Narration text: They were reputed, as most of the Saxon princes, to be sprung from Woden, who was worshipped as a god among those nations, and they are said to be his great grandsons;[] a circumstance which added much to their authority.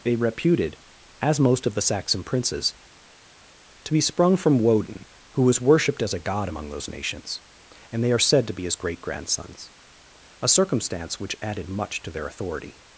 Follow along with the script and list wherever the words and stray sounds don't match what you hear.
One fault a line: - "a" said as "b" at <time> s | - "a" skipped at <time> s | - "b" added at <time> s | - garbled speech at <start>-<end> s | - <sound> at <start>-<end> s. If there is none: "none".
- "were" skipped at 0.1 s